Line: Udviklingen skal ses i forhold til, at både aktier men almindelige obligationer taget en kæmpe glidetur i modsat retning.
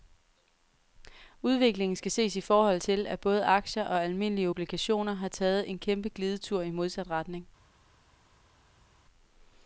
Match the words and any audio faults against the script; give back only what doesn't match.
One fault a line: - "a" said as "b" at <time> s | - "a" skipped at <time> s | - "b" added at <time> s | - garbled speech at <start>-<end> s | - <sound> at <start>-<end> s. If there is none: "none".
- "men" said as "og" at 3.8 s
- "har" added at 5.1 s